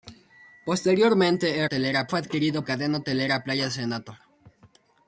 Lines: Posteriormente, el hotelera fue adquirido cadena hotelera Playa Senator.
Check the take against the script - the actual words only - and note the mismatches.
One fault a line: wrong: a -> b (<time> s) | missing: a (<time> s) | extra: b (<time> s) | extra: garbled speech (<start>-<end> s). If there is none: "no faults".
no faults